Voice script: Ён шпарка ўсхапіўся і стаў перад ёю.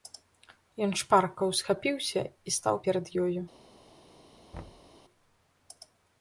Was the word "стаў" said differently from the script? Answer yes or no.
no